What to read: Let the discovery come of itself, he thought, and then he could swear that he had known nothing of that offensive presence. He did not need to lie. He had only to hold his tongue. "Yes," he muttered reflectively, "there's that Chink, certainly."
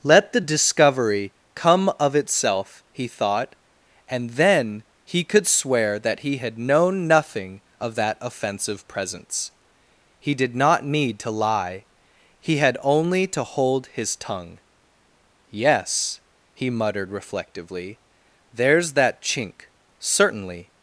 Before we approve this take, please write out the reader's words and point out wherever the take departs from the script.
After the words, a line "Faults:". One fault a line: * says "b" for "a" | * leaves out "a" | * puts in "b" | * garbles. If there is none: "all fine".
Let the discovery come of itself, he thought, and then he could swear that he had known nothing of that offensive presence. He did not need to lie. He had only to hold his tongue. "Yes," he muttered reflectively, "there's that Chink, certainly."
Faults:
all fine